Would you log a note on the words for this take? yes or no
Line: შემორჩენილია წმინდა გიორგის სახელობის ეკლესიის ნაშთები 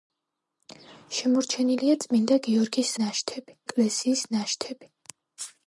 yes